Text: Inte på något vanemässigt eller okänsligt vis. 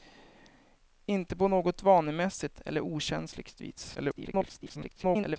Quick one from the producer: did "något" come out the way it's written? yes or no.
yes